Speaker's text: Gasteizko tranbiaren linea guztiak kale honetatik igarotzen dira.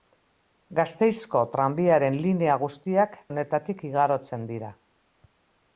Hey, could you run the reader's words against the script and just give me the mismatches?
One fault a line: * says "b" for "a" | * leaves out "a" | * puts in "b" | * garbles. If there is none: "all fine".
* leaves out "kale"